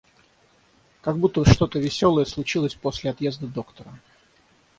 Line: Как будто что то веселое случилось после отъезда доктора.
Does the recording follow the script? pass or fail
pass